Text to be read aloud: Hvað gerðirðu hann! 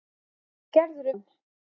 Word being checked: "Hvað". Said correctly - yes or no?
yes